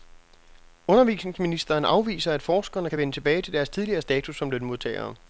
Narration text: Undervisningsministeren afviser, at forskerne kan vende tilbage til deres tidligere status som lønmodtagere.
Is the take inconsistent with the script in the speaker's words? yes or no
no